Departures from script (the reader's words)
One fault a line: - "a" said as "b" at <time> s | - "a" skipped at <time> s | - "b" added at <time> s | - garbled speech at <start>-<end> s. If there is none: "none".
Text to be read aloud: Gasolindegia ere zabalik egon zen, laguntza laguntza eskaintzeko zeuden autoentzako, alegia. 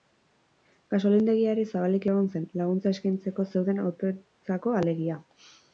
- "laguntza" skipped at 3.0 s